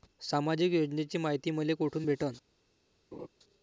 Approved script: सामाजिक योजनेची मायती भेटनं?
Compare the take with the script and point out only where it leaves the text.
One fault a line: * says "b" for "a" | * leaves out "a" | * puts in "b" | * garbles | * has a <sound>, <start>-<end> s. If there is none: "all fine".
* puts in "मले कोठून"
* has a laugh, 3.1-3.3 s